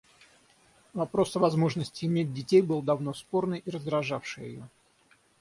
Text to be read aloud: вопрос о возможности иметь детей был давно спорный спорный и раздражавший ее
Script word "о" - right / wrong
right